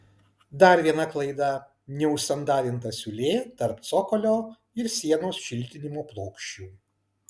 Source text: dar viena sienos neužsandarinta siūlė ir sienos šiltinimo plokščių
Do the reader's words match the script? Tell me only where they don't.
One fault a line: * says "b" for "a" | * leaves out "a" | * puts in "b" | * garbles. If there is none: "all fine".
* says "klaida" for "sienos"
* puts in "tarp cokolio"